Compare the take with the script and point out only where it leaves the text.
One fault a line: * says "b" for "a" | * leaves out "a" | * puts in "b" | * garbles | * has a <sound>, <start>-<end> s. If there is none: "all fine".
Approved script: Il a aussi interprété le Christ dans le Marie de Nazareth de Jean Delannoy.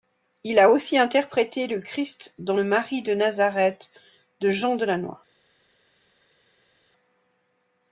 all fine